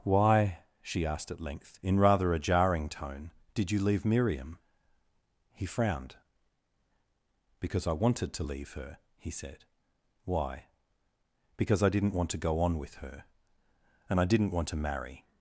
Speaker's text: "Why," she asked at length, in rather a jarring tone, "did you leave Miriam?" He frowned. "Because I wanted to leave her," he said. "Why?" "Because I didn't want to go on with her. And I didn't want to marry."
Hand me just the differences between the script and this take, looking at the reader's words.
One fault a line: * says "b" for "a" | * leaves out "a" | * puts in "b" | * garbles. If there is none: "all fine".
all fine